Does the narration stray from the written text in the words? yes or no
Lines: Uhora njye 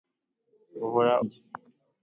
no